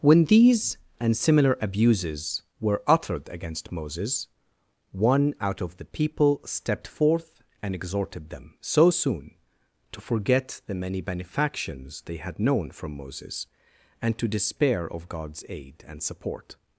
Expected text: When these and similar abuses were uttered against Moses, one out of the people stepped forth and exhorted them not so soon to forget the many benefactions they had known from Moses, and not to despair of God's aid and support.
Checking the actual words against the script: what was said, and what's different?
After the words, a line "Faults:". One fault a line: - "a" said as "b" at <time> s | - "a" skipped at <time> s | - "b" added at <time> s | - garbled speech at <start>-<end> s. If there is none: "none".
When these and similar abuses were uttered against Moses, one out of the people stepped forth and exhorted them so soon to forget the many benefactions they had known from Moses, and to despair of God's aid and support.
Faults:
- "not" skipped at 8.6 s
- "not" skipped at 14.2 s